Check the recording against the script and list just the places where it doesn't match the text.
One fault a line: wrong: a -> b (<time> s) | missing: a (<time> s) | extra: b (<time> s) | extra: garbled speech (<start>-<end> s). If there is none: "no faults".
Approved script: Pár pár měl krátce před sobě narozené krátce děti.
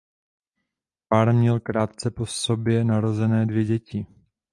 missing: pár (1.3 s)
wrong: před -> po (2.1 s)
wrong: krátce -> dvě (3.5 s)